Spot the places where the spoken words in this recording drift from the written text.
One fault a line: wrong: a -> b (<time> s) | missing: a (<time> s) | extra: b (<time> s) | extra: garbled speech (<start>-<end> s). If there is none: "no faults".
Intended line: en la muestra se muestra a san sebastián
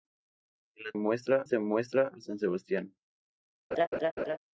no faults